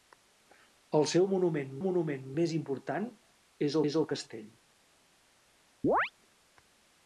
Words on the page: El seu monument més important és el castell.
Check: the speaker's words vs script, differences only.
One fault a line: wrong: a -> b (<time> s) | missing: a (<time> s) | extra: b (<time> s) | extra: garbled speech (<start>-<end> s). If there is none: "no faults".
extra: monument (1.9 s)
extra: és (3.9 s)